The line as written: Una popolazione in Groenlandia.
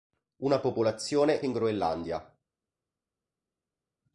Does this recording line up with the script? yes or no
yes